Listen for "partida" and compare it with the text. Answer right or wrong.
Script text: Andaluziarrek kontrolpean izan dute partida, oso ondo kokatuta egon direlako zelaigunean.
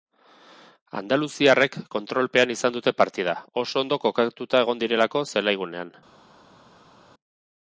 right